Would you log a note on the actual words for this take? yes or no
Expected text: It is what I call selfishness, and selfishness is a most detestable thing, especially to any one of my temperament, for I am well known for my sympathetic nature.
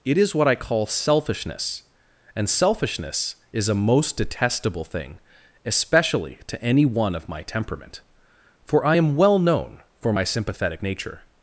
no